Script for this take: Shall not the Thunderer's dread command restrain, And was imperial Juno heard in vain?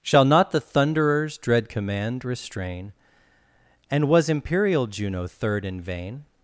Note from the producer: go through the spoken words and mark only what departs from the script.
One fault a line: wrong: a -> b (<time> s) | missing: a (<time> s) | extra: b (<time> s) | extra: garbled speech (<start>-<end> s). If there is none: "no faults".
wrong: heard -> third (5.3 s)